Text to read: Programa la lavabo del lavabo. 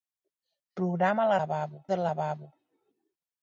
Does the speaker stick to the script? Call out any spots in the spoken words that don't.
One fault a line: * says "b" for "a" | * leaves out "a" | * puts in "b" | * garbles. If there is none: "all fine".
all fine